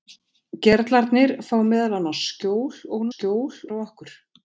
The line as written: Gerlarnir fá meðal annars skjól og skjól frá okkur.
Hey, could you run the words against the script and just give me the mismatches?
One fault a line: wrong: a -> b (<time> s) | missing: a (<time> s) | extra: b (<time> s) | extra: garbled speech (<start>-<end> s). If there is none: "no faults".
no faults